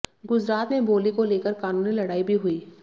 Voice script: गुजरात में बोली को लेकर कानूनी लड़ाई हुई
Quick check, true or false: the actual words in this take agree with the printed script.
false